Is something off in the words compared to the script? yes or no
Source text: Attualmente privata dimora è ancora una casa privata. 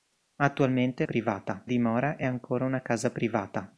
no